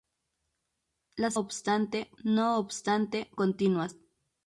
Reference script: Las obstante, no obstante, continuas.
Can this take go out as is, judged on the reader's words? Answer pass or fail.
pass